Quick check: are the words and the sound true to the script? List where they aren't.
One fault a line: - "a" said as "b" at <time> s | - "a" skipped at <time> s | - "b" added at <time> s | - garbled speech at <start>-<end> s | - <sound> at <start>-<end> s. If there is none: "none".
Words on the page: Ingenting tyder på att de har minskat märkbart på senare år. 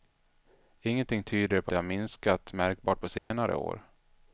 - "att" skipped at 1.7 s
- dropout at 3.2-3.3 s